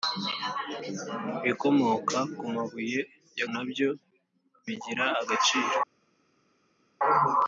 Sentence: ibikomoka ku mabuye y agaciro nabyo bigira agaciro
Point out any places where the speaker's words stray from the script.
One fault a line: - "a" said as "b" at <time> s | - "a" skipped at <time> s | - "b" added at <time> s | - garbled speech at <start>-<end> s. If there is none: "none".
- "agaciro" skipped at 3.4 s